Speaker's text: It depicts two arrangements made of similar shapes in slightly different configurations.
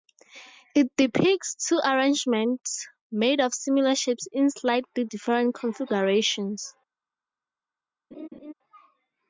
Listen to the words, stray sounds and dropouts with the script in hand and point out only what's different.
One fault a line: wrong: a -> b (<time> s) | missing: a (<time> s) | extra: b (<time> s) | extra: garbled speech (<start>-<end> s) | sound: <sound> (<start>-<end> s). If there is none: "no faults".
sound: laugh (8.1-8.5 s)